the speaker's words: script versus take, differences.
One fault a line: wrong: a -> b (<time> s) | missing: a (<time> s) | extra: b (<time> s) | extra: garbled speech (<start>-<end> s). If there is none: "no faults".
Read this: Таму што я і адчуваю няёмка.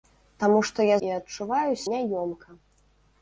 no faults